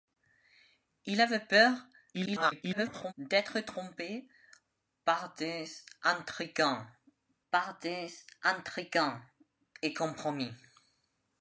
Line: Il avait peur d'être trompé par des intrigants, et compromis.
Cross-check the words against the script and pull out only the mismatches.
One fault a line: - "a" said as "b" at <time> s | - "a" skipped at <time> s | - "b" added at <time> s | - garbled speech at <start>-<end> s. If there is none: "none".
- garbled speech at 2.1-3.1 s
- "par des intrigants" added at 7.5 s